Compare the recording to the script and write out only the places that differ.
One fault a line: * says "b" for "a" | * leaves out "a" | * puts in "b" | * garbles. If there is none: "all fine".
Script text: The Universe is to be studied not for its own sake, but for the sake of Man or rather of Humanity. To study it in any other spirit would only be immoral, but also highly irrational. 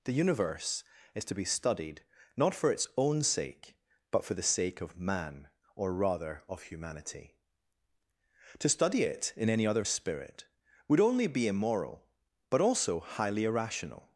all fine